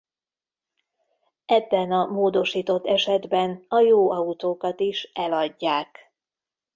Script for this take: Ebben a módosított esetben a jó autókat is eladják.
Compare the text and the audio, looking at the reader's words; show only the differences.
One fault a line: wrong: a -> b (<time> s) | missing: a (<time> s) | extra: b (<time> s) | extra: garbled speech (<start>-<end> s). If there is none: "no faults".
no faults